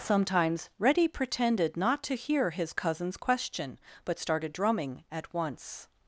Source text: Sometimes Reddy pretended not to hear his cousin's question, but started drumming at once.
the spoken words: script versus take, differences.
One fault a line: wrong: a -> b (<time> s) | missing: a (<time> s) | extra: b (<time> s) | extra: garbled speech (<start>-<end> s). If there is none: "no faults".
no faults